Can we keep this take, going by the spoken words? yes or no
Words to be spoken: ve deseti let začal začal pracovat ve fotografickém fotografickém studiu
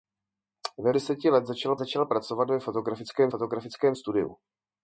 yes